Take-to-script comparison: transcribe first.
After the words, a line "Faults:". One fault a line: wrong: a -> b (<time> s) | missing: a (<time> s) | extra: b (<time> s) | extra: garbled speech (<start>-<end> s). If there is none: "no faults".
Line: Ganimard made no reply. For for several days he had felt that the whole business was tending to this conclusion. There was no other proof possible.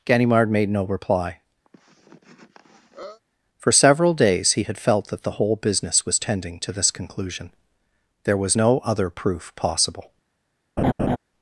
Ganimard made no reply. For several days he had felt that the whole business was tending to this conclusion. There was no other proof possible.
Faults:
missing: for (3.7 s)